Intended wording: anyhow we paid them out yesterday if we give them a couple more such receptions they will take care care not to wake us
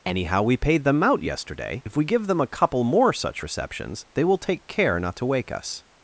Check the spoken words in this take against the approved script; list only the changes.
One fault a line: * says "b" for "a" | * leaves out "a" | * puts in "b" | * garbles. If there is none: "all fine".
* leaves out "care"